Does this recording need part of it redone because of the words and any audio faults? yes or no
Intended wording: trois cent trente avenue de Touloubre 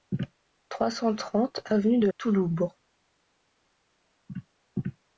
no